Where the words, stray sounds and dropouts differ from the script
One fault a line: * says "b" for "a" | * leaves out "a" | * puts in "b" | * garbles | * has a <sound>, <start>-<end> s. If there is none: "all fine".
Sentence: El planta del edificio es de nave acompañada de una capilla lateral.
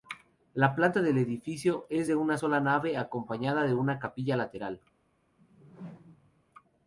* says "La" for "El"
* puts in "una sola"
* has a whoosh, 5.4-6.4 s